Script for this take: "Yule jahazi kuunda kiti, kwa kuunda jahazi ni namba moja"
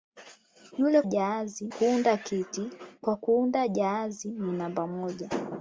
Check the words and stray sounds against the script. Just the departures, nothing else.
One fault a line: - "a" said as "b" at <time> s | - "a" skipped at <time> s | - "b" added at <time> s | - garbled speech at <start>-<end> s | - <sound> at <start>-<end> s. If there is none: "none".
none